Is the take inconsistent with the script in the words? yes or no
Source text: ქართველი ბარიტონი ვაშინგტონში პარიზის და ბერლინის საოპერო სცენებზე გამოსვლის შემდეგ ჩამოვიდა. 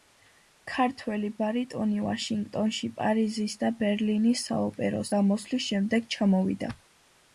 yes